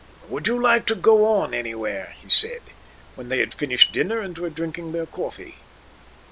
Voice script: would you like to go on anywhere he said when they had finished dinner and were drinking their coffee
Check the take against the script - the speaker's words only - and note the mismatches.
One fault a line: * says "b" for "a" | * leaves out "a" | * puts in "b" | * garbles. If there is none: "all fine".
all fine